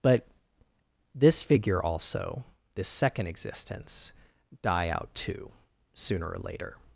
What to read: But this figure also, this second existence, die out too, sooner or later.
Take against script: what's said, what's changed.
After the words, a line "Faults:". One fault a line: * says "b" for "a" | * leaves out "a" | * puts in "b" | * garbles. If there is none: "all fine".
But this figure also, this second existence, die out too, sooner or later.
Faults:
all fine